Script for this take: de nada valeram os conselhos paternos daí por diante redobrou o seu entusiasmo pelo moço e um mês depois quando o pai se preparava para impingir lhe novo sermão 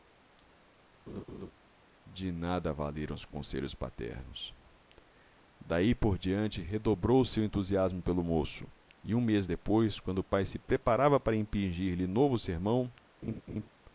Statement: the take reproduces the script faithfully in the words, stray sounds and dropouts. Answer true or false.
false